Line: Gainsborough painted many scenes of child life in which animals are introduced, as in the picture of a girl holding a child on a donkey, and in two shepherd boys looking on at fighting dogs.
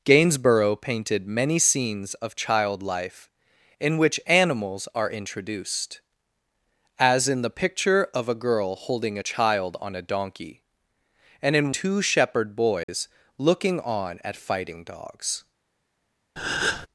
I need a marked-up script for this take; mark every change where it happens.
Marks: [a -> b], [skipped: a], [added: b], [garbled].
Gainsborough painted many scenes of child life in which animals are introduced, as in the picture of a girl holding a child on a donkey, and in two shepherd boys looking on at fighting dogs.